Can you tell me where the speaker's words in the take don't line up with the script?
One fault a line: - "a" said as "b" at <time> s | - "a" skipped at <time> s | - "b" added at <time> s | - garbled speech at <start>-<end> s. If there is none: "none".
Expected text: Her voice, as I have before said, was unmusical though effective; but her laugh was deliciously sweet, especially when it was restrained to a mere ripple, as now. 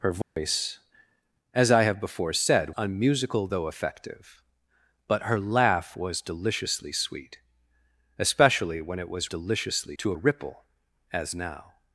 - "was" skipped at 2.7 s
- "restrained" said as "deliciously" at 9.2 s
- "mere" skipped at 10.2 s